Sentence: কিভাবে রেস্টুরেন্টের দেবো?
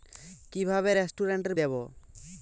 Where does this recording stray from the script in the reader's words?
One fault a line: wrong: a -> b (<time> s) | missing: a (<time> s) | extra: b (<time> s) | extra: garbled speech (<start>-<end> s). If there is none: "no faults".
no faults